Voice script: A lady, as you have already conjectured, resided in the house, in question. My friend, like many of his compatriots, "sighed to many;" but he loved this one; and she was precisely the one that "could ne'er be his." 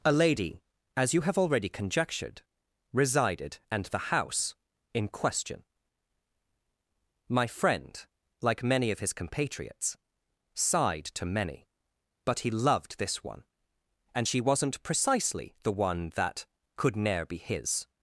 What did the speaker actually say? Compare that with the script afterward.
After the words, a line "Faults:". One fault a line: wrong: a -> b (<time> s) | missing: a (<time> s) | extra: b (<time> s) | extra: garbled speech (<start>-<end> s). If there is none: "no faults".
A lady, as you have already conjectured, resided and the house, in question. My friend, like many of his compatriots, "sighed to many;" but he loved this one; and she wasn't precisely the one that "could ne'er be his."
Faults:
wrong: in -> and (3.7 s)
wrong: was -> wasn't (14.4 s)